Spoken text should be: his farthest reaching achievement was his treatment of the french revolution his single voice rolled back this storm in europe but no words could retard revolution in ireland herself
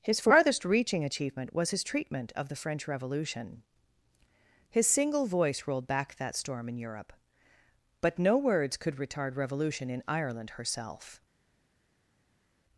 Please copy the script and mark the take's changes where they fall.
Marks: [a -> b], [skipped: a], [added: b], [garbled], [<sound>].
his farthest reaching achievement was his treatment of the french revolution his single voice rolled back [this -> that] storm in europe but no words could retard revolution in ireland herself